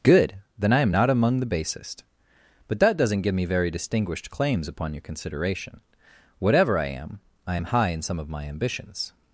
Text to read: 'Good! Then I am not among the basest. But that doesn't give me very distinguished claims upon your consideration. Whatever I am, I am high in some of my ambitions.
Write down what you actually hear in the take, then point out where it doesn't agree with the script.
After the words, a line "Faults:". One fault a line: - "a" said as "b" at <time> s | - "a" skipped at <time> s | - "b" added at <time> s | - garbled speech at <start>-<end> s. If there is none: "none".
'Good! Then I am not among the basest. But that doesn't give me very distinguished claims upon your consideration. Whatever I am, I am high in some of my ambitions.
Faults:
none